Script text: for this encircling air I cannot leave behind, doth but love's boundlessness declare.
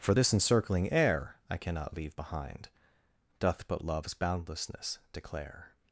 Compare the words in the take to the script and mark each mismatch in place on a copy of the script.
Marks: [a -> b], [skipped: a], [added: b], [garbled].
for this encircling air I cannot leave behind, doth but love's boundlessness declare.